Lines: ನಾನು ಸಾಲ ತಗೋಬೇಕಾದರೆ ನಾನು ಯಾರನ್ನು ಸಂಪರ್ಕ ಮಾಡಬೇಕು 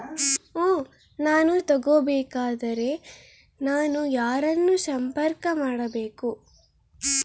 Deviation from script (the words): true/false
true